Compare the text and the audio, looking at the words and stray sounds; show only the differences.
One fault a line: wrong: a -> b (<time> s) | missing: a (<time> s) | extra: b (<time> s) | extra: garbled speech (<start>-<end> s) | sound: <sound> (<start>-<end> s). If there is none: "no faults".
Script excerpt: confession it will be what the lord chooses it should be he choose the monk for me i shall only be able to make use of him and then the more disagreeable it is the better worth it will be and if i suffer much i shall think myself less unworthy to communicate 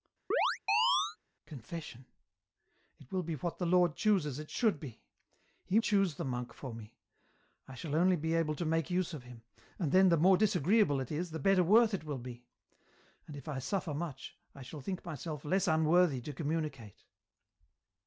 sound: chirp (0.3-1.2 s)